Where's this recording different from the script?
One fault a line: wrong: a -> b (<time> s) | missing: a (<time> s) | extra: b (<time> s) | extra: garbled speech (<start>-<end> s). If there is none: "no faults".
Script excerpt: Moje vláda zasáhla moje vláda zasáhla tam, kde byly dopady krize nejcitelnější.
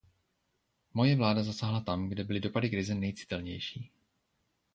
missing: moje vláda zasáhla (1.8 s)